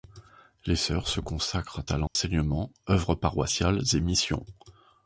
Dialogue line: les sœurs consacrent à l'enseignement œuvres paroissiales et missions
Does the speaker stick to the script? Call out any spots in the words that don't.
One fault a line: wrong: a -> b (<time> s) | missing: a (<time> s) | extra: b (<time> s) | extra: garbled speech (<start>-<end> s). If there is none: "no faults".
extra: se (1.1 s)